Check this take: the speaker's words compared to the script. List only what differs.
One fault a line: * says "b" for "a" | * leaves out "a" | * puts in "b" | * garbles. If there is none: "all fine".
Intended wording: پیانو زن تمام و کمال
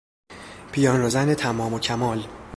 all fine